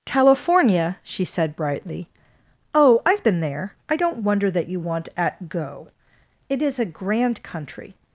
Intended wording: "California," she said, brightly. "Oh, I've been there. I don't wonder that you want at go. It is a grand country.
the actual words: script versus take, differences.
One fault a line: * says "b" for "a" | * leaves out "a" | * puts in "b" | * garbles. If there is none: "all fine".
all fine